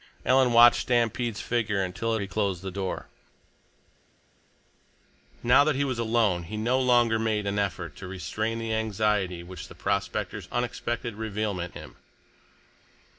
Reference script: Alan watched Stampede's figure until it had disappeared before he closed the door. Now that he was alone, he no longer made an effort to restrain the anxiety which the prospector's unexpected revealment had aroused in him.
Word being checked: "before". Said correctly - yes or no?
no